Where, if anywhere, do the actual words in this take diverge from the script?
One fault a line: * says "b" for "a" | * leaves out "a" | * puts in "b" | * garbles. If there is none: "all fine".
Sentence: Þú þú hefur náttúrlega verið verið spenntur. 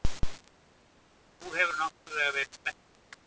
all fine